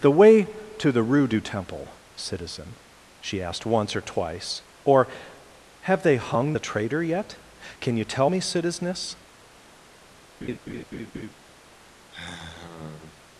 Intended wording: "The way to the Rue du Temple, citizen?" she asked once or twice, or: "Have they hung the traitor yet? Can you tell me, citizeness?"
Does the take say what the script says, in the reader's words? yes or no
yes